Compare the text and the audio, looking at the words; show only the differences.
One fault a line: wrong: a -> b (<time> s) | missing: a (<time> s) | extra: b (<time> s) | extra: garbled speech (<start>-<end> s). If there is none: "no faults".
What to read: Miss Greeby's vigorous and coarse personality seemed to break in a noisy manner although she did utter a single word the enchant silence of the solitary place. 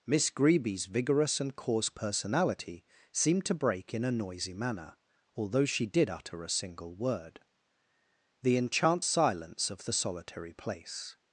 no faults